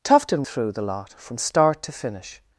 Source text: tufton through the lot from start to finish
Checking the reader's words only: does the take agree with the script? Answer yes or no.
yes